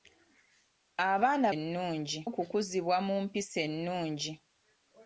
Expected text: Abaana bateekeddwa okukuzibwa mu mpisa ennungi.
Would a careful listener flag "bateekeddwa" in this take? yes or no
yes